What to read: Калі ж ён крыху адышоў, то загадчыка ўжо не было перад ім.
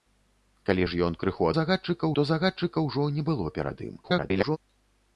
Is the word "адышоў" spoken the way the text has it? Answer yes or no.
no